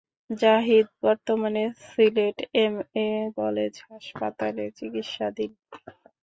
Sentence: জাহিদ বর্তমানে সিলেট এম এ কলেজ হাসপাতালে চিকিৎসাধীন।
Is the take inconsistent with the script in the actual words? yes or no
no